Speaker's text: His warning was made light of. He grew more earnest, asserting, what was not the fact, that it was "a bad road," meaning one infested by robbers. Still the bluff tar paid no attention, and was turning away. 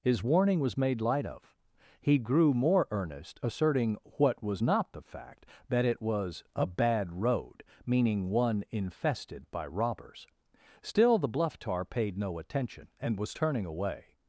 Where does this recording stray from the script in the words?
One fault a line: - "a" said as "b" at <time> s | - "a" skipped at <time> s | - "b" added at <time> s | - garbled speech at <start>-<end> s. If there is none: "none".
none